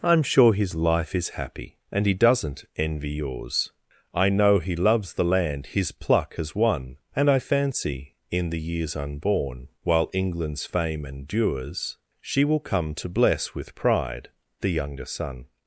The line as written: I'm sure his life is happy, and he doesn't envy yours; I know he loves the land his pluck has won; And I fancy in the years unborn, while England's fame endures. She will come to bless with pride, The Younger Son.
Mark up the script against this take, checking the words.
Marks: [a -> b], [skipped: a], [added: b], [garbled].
I'm sure his life is happy, and he doesn't envy yours; I know he loves the land his pluck has won; And I fancy in the years unborn, while England's fame endures. She will come to bless with pride, The Younger Son.